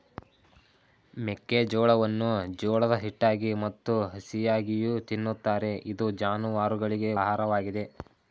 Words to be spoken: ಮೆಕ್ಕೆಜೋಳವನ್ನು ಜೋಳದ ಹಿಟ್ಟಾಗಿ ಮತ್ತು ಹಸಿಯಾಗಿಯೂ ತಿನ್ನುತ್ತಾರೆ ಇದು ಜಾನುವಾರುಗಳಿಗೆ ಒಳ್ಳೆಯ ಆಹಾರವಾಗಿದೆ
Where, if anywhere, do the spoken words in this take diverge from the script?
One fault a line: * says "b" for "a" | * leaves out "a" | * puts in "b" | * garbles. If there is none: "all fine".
* leaves out "ಒಳ್ಳೆಯ"